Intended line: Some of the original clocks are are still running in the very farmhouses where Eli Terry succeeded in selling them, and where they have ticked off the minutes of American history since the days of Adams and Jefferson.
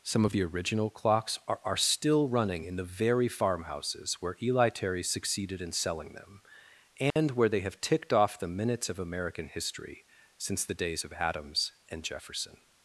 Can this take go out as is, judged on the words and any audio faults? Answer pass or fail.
fail